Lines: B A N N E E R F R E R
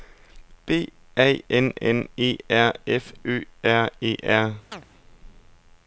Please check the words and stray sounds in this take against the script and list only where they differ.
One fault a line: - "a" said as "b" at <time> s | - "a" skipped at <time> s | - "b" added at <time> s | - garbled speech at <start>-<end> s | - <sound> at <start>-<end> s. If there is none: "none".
- "E" skipped at 2.4 s
- "Ø" added at 3.2 s
- chirp at 4.7-4.8 s